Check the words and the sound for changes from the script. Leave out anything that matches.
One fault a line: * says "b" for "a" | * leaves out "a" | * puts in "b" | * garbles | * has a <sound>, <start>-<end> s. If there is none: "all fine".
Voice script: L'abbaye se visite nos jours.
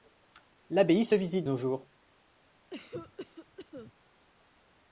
* has a cough, 2.7-3.9 s